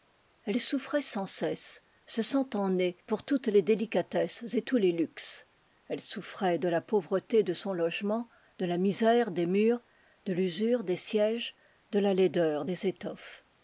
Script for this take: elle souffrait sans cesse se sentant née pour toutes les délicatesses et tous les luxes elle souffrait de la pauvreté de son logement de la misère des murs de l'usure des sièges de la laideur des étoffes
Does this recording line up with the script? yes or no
yes